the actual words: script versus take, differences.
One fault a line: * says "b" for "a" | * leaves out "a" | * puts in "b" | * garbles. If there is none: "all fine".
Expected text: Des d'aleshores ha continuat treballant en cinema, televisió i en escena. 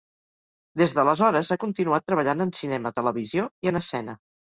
all fine